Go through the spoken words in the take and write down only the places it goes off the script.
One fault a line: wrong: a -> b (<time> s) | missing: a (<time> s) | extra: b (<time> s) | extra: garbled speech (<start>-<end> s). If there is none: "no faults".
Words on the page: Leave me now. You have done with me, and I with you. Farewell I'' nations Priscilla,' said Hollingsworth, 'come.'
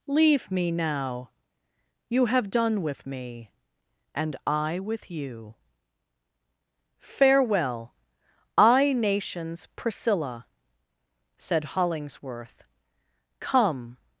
no faults